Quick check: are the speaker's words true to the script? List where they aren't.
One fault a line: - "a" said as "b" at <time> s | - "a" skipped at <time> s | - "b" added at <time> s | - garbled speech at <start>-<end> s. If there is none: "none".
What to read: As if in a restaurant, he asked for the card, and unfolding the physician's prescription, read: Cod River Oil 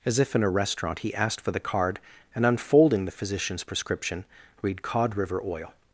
none